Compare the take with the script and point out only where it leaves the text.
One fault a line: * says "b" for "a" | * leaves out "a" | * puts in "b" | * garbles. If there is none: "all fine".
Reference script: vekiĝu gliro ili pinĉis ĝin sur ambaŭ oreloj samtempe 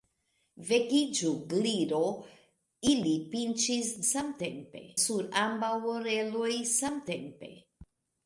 * says "samtempe" for "ĝin"